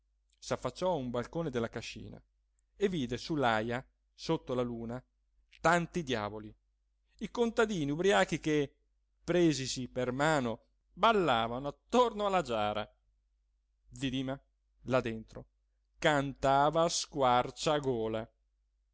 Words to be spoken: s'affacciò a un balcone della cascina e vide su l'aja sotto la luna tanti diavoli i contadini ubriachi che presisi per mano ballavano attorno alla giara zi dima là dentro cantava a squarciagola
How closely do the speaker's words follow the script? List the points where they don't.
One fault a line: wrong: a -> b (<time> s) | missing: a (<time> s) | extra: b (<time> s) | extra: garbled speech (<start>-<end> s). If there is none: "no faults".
no faults